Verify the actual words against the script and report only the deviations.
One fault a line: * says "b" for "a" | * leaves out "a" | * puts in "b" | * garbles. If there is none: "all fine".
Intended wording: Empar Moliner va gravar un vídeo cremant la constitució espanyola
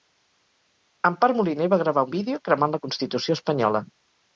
all fine